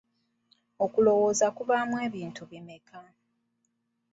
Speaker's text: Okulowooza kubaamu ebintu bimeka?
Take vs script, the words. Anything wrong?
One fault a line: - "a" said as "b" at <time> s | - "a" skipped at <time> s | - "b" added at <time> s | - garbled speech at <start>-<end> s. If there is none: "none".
none